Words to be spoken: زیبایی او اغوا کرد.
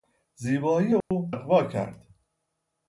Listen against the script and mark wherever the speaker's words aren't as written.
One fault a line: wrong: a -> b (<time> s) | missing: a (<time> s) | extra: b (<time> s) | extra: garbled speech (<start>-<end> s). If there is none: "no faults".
no faults